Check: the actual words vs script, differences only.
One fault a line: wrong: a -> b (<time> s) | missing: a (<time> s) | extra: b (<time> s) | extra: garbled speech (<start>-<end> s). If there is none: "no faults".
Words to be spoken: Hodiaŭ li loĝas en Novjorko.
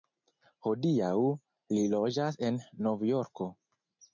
no faults